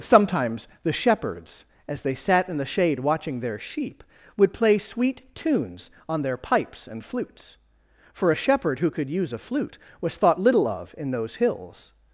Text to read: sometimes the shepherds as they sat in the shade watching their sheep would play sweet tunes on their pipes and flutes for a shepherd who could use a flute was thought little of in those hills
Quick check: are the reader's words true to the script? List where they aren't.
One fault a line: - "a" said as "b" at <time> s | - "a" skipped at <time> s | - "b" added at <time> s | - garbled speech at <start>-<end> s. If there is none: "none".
none